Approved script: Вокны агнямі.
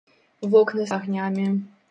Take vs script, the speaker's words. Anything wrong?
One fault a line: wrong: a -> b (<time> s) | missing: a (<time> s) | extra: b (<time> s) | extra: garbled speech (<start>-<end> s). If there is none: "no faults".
no faults